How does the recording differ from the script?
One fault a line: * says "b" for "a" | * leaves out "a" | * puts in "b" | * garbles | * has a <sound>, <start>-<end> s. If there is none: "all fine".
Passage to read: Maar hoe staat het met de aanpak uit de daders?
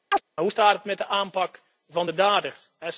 * has a chirp, 0.1-0.2 s
* says "van" for "uit"